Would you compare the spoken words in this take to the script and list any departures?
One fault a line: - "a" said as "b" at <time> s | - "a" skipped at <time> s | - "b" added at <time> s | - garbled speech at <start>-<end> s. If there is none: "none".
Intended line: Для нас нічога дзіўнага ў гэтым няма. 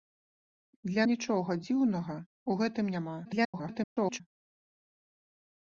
- "нас" skipped at 1.1 s
- garbled speech at 3.2-4.2 s